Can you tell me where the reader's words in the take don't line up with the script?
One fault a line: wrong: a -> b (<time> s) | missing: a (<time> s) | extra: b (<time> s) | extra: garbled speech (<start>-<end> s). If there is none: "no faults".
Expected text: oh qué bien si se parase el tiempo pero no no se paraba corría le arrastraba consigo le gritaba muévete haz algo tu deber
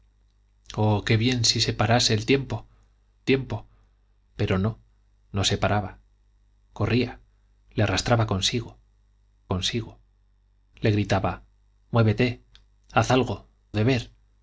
extra: tiempo (3.2 s)
extra: consigo (9.5 s)
missing: tu (13.5 s)